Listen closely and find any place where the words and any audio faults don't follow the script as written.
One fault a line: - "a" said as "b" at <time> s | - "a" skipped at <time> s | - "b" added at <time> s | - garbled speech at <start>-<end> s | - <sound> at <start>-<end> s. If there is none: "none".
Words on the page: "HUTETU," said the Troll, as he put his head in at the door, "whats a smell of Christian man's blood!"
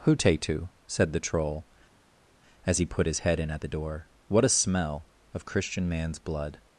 - "whats" said as "what" at 4.3 s